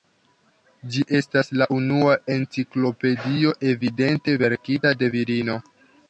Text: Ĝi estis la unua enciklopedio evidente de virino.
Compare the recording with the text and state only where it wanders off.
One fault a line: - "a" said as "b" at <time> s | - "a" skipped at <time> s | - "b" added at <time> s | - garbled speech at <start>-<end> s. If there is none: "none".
- "estis" said as "estas" at 1.2 s
- "verkita" added at 4.4 s